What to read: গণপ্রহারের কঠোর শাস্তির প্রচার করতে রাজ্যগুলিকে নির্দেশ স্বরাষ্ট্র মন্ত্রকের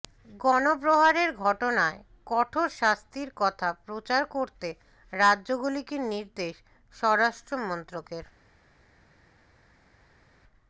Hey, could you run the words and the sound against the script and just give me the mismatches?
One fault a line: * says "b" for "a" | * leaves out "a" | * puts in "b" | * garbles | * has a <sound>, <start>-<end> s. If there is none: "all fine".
* puts in "ঘটনায়"
* puts in "কথা"